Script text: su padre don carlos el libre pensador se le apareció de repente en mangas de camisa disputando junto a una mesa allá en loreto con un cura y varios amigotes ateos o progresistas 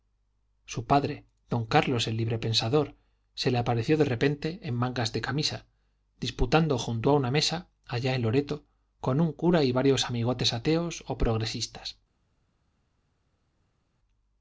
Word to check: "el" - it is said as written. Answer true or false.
true